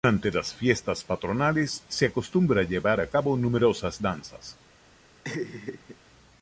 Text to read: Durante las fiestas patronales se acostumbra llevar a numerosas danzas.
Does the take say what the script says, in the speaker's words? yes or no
no